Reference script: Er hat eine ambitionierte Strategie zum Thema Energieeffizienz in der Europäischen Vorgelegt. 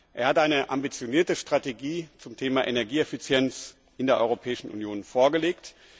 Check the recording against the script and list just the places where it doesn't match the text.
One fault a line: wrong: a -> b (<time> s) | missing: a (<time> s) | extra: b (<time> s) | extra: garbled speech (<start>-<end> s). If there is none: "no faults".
extra: Union (4.7 s)